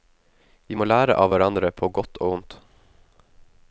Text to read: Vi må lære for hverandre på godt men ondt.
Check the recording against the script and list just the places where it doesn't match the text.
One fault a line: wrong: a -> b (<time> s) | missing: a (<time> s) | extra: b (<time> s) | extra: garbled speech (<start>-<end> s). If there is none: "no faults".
wrong: for -> av (1.2 s)
wrong: men -> og (2.2 s)